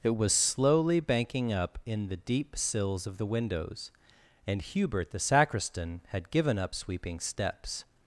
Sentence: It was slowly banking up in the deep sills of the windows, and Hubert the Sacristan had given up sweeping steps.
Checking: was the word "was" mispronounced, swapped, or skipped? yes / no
no